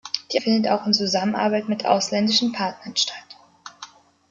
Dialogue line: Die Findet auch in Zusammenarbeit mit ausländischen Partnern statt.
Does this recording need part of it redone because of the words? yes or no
no